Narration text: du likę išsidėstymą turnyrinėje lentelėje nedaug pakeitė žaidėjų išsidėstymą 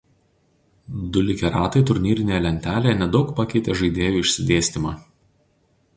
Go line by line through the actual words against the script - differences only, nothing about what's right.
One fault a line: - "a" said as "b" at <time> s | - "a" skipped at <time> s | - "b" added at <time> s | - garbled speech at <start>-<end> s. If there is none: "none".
- "išsidėstymą" said as "ratai" at 1.6 s